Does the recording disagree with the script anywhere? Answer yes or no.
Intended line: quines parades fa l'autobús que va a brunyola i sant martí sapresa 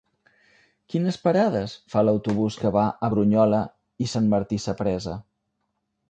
no